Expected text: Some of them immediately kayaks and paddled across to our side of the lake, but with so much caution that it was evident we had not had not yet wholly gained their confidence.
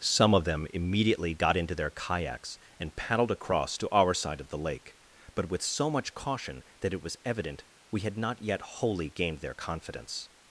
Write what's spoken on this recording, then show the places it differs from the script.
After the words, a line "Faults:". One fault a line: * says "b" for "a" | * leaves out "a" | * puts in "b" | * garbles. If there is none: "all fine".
Some of them immediately got into their kayaks and paddled across to our side of the lake, but with so much caution that it was evident we had not yet wholly gained their confidence.
Faults:
* puts in "got into their"
* leaves out "had not"